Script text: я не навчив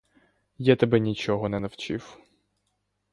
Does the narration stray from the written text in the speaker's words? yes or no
yes